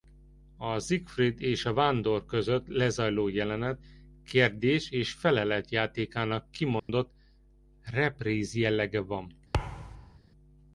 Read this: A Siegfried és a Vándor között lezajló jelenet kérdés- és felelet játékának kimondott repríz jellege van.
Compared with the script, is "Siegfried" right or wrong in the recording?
right